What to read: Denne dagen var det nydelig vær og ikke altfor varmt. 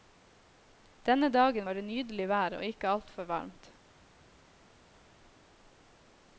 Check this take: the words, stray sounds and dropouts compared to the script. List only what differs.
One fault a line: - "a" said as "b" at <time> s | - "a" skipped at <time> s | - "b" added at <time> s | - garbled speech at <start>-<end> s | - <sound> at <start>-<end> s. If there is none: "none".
none